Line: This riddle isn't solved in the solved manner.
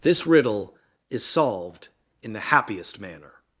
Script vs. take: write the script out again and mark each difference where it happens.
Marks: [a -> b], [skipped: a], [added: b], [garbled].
This riddle [isn't -> is] solved in the [solved -> happiest] manner.